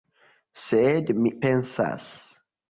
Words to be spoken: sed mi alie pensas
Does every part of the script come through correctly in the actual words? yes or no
no